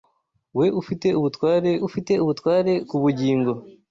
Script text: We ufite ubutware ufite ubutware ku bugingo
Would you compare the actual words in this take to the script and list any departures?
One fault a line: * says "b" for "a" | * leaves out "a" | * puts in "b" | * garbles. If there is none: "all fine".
all fine